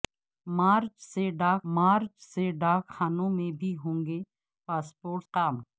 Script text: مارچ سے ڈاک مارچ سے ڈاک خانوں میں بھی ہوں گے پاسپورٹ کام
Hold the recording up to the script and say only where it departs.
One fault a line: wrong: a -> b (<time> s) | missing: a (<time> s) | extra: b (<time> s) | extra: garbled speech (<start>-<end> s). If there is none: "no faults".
no faults